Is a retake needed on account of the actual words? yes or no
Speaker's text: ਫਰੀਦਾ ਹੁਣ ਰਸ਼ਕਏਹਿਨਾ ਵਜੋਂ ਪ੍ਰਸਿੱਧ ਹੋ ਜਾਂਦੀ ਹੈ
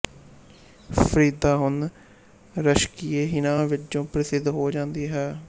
no